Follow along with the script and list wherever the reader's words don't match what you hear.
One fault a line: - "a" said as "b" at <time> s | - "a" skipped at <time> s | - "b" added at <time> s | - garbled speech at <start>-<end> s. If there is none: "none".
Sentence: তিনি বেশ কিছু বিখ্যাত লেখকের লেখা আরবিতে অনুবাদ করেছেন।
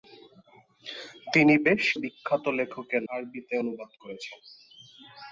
- "কিছু" skipped at 1.8 s
- "লেখা" skipped at 3.0 s